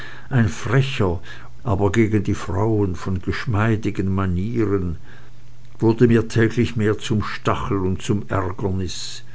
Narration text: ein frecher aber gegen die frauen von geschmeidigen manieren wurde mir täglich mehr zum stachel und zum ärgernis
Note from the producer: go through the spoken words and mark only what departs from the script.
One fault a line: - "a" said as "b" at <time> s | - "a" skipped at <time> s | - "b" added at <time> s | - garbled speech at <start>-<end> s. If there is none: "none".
none